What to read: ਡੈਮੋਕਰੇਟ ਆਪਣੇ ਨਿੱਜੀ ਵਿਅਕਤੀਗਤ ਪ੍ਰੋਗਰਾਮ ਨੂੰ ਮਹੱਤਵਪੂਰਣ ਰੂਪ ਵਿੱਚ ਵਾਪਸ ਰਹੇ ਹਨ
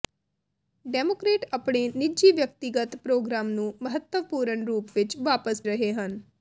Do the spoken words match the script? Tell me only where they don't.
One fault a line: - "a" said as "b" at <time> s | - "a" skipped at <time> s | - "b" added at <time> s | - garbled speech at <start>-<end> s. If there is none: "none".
none